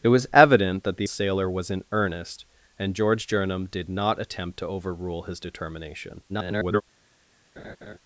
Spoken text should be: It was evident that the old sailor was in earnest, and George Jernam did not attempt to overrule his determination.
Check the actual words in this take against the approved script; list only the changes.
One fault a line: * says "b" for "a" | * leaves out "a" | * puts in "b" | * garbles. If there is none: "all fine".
* leaves out "old"
* garbles